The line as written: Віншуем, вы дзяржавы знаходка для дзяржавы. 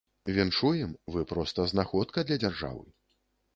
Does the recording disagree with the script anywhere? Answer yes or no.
yes